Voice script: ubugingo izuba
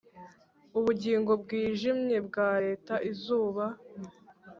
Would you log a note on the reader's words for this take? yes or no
yes